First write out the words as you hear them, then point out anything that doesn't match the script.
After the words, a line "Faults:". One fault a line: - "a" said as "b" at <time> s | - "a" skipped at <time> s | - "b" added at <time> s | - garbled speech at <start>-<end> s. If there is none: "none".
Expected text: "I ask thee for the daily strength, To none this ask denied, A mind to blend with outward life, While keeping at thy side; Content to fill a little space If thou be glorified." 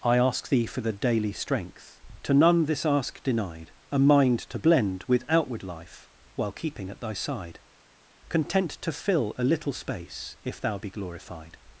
"I ask thee for the daily strength, To none this ask denied, A mind to blend with outward life, While keeping at thy side; Content to fill a little space If thou be glorified."
Faults:
none